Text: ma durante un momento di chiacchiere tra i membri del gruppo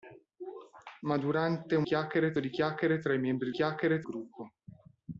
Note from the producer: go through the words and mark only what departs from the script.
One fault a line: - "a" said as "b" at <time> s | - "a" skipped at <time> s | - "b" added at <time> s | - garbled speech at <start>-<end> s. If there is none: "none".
- "momento" said as "chiacchiere" at 1.8 s
- "del" said as "chiacchiere" at 3.5 s